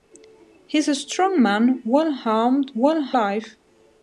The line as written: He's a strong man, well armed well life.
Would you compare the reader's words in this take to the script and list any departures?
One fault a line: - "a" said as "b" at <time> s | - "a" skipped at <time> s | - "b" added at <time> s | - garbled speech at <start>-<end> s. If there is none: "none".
none